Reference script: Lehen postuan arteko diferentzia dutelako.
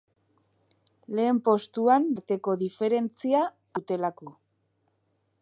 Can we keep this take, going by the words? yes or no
yes